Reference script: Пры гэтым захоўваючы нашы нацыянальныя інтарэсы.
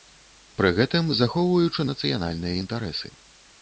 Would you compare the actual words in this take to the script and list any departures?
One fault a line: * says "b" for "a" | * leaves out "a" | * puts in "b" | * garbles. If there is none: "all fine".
* leaves out "нашы"